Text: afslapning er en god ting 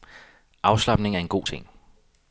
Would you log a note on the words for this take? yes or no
no